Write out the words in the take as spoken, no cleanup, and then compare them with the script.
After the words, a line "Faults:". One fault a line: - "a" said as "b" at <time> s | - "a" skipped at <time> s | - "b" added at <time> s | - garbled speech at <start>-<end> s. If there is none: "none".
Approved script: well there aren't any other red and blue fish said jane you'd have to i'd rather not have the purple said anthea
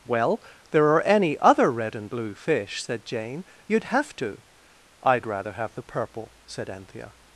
well there are any other red and blue fish said jane you'd have to i'd rather have the purple said anthea
Faults:
- "aren't" said as "are" at 0.9 s
- "not" skipped at 5.5 s